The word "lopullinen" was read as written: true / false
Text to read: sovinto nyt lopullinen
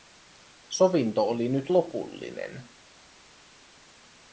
true